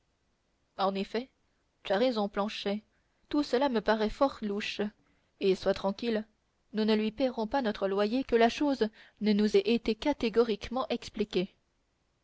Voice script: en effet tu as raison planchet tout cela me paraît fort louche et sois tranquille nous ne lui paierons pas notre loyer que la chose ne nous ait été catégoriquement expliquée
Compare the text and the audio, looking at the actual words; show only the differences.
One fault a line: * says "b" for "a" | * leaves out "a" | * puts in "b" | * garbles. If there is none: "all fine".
all fine